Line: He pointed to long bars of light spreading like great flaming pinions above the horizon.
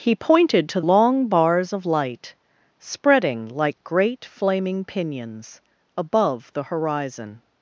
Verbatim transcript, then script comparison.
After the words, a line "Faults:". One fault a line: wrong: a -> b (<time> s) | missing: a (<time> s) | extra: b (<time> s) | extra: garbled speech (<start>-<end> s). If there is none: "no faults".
He pointed to long bars of light spreading like great flaming pinions above the horizon.
Faults:
no faults